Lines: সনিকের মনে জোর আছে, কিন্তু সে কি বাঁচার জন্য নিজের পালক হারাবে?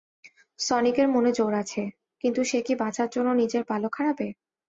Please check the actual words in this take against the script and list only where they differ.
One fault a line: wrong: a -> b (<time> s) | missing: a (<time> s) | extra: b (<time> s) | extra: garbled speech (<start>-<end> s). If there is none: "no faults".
no faults